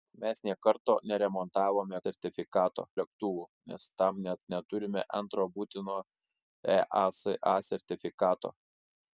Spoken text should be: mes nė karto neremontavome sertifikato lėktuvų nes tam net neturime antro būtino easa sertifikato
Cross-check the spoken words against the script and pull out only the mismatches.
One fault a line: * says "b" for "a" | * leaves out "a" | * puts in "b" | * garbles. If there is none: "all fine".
all fine